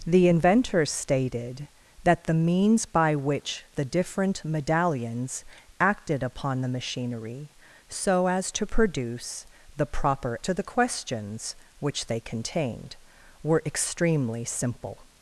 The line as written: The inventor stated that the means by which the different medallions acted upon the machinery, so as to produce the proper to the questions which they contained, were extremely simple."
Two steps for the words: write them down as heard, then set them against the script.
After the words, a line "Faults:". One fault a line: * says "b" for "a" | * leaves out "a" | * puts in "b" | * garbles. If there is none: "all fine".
The inventor stated that the means by which the different medallions acted upon the machinery, so as to produce the proper to the questions which they contained, were extremely simple."
Faults:
all fine